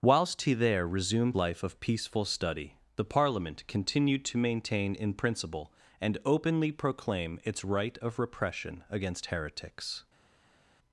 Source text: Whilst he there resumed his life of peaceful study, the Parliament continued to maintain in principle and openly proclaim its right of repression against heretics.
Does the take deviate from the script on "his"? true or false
true